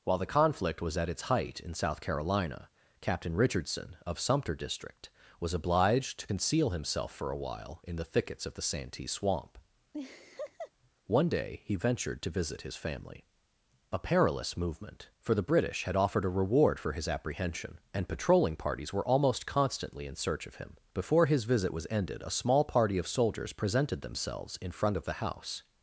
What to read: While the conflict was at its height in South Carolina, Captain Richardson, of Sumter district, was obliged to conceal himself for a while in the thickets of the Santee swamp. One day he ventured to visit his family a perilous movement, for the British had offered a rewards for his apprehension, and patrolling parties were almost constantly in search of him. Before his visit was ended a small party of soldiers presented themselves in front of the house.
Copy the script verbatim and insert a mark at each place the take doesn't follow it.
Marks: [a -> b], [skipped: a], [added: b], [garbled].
While the conflict was at its height in South Carolina, Captain Richardson, of Sumter district, was obliged to conceal himself for a while in the thickets of the Santee swamp. One day he ventured to visit his family a perilous movement, for the British had offered a [rewards -> reward] for his apprehension, and patrolling parties were almost constantly in search of him. Before his visit was ended a small party of soldiers presented themselves in front of the house.